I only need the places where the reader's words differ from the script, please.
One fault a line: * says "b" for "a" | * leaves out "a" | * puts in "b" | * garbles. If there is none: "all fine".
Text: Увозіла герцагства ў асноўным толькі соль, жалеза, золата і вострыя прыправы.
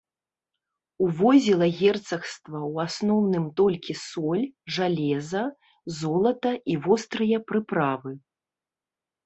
all fine